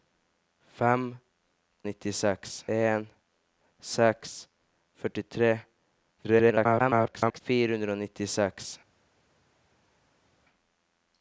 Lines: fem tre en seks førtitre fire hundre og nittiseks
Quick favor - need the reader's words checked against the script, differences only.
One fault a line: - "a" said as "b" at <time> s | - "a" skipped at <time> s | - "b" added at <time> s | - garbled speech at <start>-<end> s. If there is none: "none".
- "tre" said as "nittiseks" at 1.9 s
- garbled speech at 6.2-7.4 s